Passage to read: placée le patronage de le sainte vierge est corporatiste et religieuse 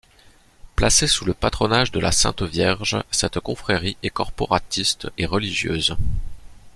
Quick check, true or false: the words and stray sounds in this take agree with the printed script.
false